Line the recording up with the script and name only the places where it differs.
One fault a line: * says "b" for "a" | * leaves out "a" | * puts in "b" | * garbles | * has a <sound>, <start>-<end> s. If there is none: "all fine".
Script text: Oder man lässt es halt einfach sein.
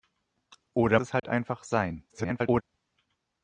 * leaves out "man lässt"
* has a dropout, 1.2-1.2 s
* garbles